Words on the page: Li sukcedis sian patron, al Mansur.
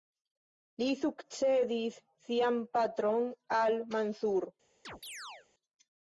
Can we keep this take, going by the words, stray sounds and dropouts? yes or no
no